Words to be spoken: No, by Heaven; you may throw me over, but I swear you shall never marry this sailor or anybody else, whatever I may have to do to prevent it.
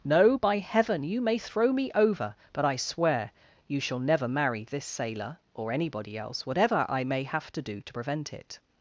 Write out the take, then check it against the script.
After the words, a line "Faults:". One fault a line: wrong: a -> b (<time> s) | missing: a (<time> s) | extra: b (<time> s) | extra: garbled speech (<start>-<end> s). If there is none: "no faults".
No, by Heaven; you may throw me over, but I swear you shall never marry this sailor or anybody else, whatever I may have to do to prevent it.
Faults:
no faults